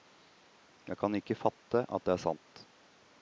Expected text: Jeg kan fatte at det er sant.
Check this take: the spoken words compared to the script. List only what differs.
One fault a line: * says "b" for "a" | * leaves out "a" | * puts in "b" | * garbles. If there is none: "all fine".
* puts in "ikke"